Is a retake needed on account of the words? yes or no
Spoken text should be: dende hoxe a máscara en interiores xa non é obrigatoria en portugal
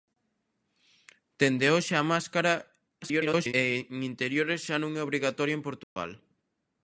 yes